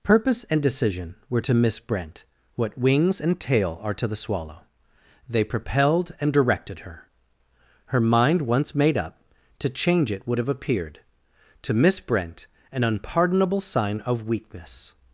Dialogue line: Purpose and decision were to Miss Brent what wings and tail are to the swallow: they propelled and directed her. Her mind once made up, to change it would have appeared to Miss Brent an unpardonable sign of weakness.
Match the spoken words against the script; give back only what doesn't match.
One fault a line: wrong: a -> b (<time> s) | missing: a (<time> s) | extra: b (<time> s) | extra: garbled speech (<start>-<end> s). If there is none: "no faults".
no faults